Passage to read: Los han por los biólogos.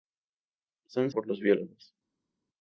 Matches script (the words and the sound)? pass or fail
pass